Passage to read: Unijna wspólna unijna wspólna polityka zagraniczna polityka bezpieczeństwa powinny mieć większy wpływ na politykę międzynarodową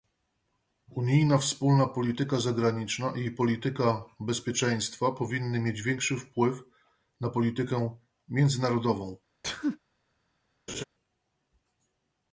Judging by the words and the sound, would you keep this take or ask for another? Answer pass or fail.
fail